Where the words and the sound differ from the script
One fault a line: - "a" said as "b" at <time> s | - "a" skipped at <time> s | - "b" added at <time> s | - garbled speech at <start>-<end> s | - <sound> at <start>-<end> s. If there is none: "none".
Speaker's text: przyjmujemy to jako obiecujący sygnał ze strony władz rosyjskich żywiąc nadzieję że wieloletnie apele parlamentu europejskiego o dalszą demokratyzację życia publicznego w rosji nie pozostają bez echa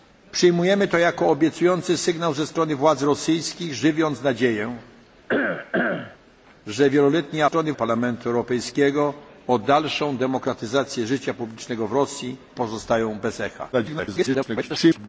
- cough at 5.3-6.2 s
- "apele" said as "strony" at 7.4 s
- "nie" skipped at 12.4 s
- garbled speech at 13.7-15.1 s